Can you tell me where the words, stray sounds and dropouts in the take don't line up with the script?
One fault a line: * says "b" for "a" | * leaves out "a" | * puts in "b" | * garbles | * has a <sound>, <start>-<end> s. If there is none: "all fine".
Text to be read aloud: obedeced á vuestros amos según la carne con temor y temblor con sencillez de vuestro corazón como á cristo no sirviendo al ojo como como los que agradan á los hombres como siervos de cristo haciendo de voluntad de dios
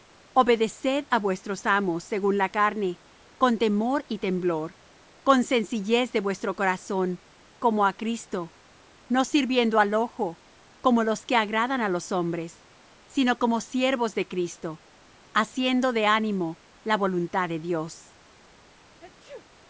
* leaves out "como"
* puts in "sino"
* puts in "ánimo la"
* has a sneeze, 19.0-19.5 s